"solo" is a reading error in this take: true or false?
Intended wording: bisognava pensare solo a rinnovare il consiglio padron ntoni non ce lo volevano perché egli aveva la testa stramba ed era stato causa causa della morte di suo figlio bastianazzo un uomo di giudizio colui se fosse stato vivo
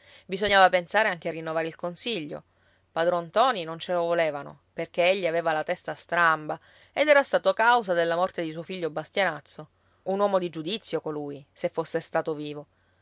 true